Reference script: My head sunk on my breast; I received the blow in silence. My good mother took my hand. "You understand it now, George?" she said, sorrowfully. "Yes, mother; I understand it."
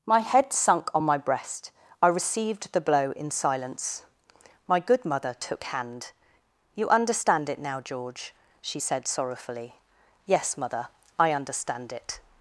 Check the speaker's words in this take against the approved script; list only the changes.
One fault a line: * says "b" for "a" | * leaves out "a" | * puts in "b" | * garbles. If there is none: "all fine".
* leaves out "my"